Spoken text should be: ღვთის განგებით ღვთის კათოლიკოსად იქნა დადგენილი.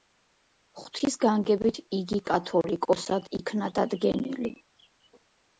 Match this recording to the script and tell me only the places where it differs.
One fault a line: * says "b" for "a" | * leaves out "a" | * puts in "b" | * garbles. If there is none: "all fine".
* says "იგი" for "ღვთის"